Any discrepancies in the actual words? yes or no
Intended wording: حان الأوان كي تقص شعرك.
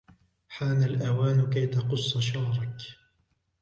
no